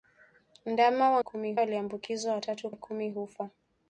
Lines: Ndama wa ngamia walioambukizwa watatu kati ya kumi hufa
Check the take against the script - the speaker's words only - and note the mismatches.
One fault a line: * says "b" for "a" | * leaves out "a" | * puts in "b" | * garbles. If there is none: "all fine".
* says "kumi" for "ngamia"
* leaves out "kati"